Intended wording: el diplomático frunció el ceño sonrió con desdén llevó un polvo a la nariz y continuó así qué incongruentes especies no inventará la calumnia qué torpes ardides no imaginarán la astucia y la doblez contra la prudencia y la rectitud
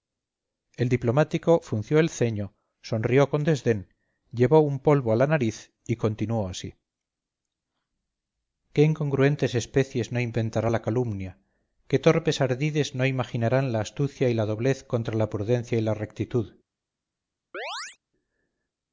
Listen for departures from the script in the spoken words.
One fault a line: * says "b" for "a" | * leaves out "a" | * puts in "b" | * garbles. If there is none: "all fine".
all fine